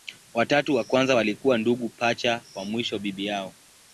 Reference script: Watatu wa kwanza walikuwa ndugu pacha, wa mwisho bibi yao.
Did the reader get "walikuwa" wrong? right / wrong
right